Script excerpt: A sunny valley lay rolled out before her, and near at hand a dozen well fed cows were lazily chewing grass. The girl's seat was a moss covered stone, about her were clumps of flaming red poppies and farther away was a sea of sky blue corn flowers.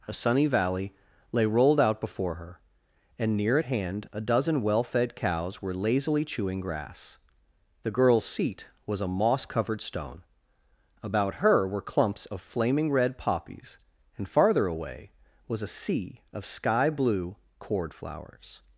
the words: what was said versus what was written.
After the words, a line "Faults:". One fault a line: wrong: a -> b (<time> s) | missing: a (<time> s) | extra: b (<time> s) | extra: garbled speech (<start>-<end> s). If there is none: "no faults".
A sunny valley lay rolled out before her, and near at hand a dozen well fed cows were lazily chewing grass. The girl's seat was a moss covered stone, about her were clumps of flaming red poppies and farther away was a sea of sky blue cord flowers.
Faults:
wrong: corn -> cord (17.6 s)